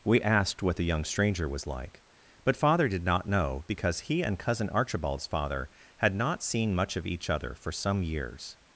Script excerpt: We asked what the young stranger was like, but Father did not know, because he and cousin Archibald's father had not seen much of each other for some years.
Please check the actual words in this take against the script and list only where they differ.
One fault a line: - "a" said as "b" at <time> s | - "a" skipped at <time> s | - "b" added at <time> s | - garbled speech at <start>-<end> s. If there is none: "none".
none